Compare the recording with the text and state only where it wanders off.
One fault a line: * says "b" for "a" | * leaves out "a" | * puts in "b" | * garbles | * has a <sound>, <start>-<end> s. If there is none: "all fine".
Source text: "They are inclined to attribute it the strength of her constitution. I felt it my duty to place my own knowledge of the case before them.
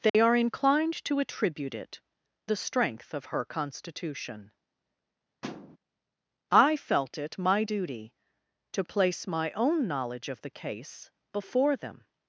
* has a dropout, 0.1-0.1 s
* has a thud, 5.4-5.8 s